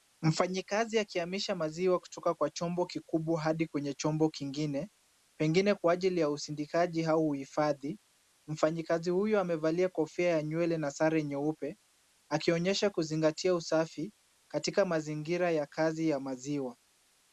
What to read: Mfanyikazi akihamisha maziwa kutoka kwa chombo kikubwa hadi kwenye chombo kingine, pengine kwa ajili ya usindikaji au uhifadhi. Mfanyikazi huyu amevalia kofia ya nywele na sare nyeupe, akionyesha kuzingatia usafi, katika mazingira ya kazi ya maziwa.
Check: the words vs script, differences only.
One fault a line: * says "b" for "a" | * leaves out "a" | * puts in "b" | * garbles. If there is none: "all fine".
all fine